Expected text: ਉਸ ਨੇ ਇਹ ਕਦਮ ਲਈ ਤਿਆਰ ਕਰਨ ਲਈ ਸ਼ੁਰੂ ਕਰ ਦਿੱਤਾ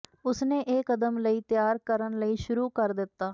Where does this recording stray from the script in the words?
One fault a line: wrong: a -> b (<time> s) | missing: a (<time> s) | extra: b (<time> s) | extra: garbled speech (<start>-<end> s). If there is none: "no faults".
no faults